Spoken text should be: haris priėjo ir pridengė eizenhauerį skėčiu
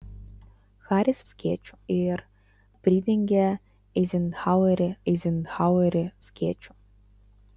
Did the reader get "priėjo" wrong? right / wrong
wrong